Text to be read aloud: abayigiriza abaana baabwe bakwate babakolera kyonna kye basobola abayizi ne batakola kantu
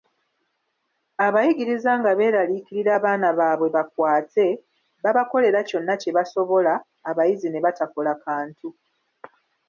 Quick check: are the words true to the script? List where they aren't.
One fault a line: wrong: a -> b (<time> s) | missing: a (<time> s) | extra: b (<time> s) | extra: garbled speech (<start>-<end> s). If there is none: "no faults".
extra: nga beeraliikirira (2.0 s)